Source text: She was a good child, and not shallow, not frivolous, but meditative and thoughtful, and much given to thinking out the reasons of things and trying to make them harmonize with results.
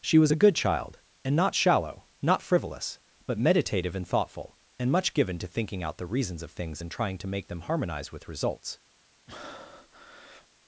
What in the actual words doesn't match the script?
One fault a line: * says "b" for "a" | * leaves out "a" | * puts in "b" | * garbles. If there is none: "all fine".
all fine